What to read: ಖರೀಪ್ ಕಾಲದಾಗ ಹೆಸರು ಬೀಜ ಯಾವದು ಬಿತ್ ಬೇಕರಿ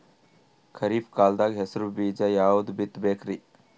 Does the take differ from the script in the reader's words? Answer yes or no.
no